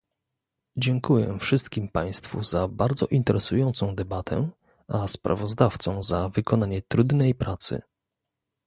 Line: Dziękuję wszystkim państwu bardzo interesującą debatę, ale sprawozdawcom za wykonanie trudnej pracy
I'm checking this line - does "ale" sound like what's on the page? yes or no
no